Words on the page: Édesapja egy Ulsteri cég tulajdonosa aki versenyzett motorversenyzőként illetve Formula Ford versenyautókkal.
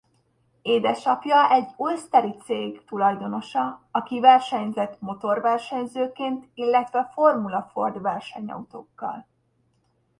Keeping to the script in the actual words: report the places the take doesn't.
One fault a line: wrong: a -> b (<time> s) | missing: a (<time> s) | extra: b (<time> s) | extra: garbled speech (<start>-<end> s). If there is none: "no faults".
no faults